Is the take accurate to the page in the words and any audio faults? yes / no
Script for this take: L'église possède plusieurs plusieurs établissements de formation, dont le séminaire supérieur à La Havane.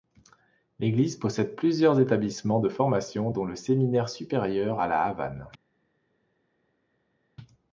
no